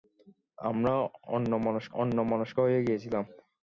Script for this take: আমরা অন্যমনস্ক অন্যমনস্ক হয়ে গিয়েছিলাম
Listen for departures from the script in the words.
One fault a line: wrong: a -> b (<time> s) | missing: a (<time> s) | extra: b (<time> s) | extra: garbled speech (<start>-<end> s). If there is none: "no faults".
no faults